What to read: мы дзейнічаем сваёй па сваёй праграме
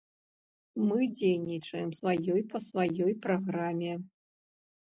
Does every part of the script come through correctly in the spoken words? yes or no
yes